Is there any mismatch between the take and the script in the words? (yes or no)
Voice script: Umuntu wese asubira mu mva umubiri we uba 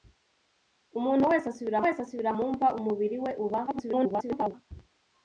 yes